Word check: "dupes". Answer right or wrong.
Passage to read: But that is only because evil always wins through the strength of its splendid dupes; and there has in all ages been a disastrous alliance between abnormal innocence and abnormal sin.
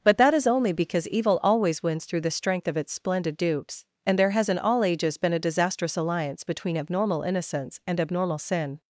right